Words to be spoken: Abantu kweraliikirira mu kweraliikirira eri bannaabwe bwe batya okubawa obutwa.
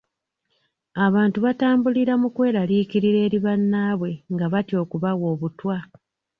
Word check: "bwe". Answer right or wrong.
wrong